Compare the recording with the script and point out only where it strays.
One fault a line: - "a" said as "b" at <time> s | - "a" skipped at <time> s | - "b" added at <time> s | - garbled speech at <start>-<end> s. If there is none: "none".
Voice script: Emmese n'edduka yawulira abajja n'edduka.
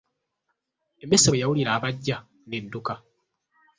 - "n'edduka" said as "bwe" at 1.3 s